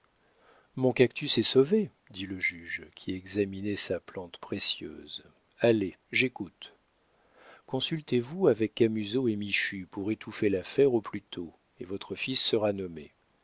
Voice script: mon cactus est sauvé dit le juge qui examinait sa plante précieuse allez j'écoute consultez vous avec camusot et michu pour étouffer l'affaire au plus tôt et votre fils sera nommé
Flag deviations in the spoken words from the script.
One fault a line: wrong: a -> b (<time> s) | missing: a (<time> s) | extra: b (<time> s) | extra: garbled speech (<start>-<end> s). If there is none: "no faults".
no faults